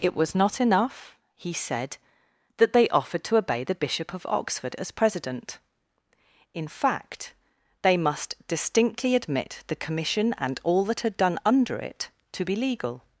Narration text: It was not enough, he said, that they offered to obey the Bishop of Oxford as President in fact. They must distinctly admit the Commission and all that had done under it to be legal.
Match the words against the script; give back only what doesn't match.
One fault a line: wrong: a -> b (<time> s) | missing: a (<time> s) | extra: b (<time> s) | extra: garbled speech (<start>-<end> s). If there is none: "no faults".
no faults